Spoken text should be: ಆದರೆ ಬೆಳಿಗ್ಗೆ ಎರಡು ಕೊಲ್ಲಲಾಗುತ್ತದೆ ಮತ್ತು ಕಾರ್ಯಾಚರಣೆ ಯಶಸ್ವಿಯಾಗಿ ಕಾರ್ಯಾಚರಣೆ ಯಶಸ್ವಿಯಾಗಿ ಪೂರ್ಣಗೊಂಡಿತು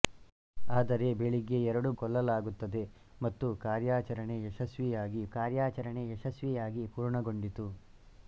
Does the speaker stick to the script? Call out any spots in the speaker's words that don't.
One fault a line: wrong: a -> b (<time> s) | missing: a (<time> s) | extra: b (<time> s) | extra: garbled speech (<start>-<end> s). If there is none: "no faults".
no faults